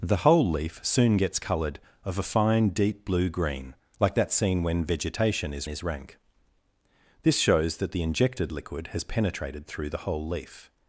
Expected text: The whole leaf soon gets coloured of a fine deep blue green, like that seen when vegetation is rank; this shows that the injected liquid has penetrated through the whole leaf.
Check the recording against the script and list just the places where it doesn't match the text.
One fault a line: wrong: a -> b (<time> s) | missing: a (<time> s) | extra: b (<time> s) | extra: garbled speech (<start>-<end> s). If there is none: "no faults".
extra: is (5.7 s)